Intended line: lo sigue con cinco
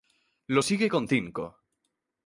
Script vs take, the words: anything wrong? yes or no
no